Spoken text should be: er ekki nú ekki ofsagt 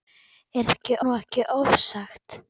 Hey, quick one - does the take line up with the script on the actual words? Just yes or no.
yes